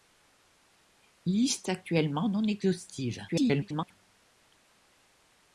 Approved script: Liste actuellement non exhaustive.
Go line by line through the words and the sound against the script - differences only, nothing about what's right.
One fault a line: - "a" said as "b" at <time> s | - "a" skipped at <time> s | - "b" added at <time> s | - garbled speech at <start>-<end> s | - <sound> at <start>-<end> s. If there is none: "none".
- garbled speech at 3.3-3.9 s